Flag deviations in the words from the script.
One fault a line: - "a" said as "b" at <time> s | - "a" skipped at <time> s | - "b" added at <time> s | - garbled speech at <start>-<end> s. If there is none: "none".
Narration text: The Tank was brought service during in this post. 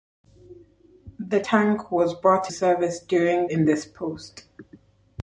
none